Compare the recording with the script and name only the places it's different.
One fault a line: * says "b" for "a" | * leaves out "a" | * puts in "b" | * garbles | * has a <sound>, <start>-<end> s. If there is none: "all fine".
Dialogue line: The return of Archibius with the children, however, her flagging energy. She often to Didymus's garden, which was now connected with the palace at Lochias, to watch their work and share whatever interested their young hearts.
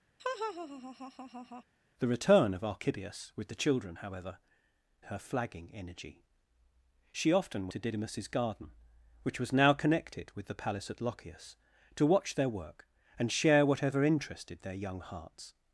* has a laugh, 0.2-1.6 s